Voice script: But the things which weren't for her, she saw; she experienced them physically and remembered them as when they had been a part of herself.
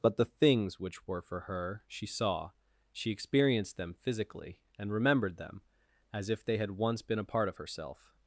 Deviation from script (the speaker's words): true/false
true